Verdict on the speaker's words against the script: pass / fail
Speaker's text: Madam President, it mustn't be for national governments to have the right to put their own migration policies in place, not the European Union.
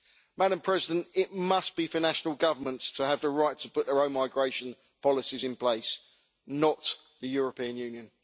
fail